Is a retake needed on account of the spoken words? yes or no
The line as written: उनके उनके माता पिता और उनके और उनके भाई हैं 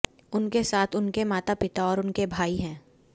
yes